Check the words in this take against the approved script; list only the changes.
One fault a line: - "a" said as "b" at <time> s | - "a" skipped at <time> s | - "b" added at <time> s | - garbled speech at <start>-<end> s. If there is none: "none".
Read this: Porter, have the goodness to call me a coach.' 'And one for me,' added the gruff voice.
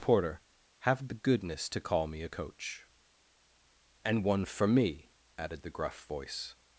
none